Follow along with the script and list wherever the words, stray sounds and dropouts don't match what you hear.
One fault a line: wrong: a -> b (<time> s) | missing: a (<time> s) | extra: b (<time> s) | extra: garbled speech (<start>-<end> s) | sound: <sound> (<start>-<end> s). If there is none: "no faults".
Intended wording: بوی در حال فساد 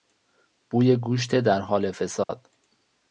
extra: گوشت (0.9 s)
sound: dropout (2.2-2.3 s)